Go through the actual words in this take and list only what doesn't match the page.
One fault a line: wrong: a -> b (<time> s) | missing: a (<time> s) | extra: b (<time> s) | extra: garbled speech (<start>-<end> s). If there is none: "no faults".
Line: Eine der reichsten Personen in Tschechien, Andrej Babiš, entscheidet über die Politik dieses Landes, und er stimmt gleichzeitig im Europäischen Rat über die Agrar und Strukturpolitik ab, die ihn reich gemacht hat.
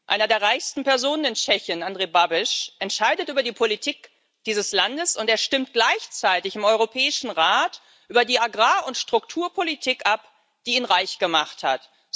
no faults